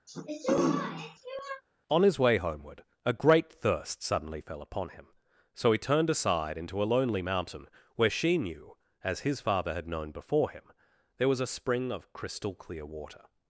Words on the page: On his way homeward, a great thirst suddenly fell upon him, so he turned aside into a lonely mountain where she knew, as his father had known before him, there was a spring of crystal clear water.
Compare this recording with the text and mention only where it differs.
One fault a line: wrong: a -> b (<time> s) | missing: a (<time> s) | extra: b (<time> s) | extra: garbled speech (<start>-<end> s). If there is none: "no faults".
no faults